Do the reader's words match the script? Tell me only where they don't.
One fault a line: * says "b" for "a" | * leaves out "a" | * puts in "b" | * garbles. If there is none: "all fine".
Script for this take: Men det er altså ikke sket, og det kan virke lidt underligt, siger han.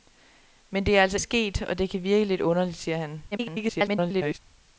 * leaves out "ikke"
* garbles